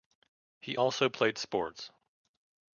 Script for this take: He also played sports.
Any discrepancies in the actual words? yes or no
no